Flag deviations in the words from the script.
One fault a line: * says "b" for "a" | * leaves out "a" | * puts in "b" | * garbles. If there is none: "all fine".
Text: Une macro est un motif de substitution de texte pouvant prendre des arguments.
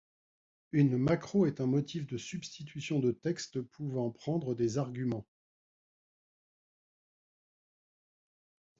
all fine